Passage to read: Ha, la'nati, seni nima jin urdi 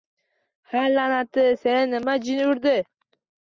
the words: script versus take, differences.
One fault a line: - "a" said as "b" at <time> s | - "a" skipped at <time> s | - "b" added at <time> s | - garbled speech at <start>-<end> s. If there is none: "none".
none